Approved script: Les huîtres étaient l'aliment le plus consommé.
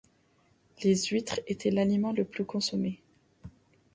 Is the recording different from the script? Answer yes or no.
no